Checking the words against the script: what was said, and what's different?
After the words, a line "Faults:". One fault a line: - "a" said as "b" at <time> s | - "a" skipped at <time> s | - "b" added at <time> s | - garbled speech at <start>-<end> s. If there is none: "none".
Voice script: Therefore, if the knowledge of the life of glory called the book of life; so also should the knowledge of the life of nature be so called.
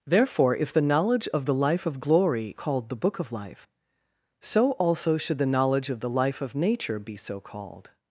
Therefore, if the knowledge of the life of glory called the book of life; so also should the knowledge of the life of nature be so called.
Faults:
none